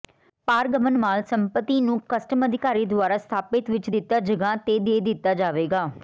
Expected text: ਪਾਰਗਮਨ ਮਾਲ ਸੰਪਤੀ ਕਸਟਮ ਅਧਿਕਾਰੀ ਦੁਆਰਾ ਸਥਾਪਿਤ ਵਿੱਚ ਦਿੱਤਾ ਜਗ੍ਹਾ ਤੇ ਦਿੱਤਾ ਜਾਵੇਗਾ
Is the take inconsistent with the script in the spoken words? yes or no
yes